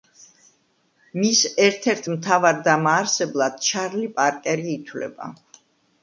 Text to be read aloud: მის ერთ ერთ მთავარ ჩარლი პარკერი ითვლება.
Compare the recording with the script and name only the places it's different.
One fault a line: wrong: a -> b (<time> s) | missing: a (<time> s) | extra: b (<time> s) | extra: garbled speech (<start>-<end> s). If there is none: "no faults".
extra: დამაარსებლად (2.7 s)